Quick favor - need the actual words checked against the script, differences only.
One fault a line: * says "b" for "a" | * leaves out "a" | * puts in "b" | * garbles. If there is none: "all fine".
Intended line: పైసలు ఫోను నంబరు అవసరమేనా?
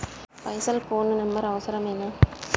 all fine